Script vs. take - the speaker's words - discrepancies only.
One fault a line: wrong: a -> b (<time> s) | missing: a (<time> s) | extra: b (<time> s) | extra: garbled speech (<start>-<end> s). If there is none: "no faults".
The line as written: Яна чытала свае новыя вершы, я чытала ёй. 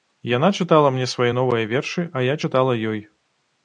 extra: мне (0.9 s)
extra: а (2.2 s)